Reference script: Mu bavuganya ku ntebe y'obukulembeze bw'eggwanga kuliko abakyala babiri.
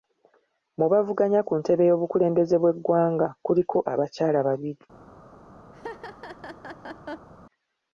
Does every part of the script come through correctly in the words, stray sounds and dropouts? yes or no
no